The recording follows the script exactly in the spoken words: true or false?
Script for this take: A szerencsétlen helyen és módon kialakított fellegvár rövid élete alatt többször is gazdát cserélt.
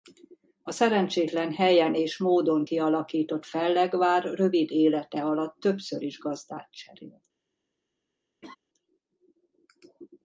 true